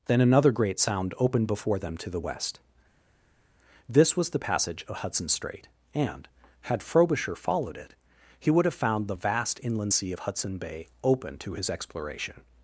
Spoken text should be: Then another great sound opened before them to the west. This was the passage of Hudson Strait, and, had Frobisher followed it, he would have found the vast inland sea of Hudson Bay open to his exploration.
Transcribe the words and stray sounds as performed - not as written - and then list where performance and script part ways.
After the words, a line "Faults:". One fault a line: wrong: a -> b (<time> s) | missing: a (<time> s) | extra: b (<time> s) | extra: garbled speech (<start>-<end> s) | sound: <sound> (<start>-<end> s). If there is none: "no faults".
Then another great sound opened before them to the west. This was the passage of Hudson Strait, and, had Frobisher followed it, he would have found the vast inland sea of Hudson Bay open to his exploration.
Faults:
no faults